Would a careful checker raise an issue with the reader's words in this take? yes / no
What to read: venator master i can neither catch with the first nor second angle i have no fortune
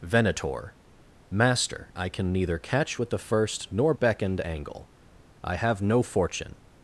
yes